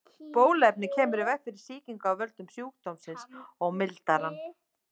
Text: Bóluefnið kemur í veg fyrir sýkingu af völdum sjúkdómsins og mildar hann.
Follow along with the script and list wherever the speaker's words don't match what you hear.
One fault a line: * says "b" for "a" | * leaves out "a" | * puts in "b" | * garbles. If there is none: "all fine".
all fine